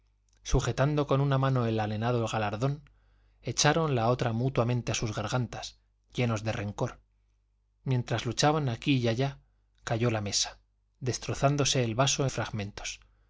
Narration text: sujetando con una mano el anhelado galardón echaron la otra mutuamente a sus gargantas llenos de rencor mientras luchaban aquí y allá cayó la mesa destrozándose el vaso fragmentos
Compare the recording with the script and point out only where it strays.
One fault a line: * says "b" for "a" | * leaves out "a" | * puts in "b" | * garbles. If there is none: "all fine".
all fine